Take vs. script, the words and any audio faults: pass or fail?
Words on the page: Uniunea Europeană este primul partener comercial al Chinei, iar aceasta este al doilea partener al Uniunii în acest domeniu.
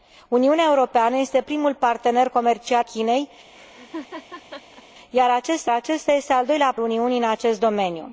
fail